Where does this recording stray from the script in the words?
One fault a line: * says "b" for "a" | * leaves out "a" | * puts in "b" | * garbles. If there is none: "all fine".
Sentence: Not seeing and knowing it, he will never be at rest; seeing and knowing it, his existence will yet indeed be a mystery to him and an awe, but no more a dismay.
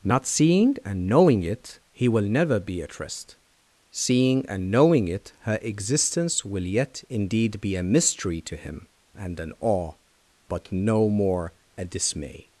* says "her" for "his"